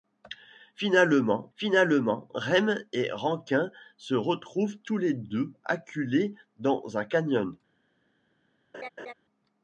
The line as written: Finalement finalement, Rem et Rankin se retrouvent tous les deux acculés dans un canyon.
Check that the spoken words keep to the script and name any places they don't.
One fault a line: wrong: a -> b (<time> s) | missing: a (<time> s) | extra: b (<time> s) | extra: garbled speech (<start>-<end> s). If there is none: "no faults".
no faults